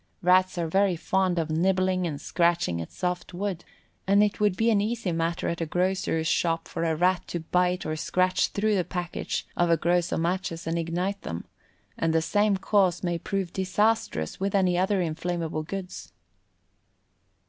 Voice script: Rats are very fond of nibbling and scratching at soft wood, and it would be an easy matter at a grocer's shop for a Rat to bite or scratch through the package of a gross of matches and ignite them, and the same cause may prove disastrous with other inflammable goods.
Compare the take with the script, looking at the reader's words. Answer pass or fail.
fail